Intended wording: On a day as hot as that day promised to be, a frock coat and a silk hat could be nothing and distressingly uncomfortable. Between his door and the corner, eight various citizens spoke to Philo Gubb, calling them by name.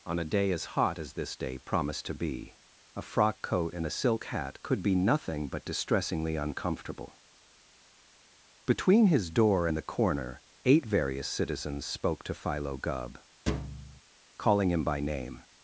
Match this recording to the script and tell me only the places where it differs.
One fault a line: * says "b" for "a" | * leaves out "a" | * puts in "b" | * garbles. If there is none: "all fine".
* says "this" for "that"
* says "but" for "and"
* says "him" for "them"